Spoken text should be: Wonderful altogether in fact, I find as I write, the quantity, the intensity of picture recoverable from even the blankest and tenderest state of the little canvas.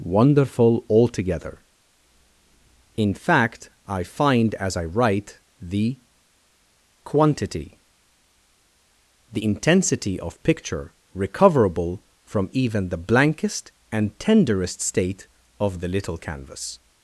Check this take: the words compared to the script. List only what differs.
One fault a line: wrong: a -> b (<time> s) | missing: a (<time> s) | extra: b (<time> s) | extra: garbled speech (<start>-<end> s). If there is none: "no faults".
no faults